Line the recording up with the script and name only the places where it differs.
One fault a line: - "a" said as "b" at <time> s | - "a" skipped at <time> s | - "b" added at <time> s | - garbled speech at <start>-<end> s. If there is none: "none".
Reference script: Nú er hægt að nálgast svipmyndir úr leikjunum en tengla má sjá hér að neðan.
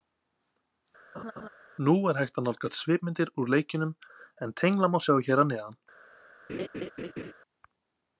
none